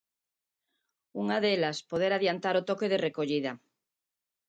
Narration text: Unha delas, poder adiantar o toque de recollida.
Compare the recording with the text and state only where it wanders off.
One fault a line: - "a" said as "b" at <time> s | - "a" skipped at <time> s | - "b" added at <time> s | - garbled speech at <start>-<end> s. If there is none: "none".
none